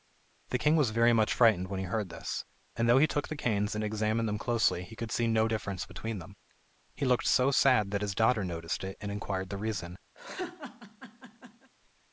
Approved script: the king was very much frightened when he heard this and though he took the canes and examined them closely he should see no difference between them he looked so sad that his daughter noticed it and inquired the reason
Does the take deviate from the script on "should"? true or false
true